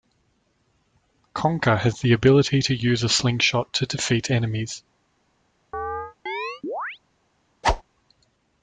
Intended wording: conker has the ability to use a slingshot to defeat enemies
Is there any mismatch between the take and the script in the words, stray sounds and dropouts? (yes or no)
yes